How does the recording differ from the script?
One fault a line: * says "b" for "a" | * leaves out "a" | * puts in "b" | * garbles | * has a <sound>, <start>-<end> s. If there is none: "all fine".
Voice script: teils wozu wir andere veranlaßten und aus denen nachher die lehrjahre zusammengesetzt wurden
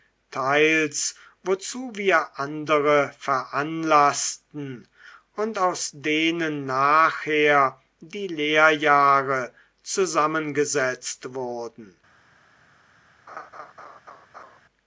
* has a laugh, 13.3-14.6 s